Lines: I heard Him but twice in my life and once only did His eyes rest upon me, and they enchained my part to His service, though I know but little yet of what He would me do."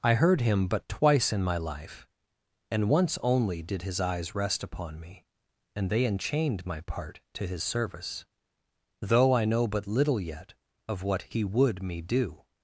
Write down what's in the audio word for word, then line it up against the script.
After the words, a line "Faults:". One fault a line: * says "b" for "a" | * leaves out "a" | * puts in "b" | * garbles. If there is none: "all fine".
I heard Him but twice in my life and once only did His eyes rest upon me, and they enchained my part to His service, though I know but little yet of what He would me do."
Faults:
all fine